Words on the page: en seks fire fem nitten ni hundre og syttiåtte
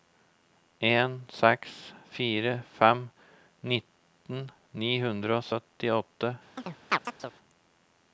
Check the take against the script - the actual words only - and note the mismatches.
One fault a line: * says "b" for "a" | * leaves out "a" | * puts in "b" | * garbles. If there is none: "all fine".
all fine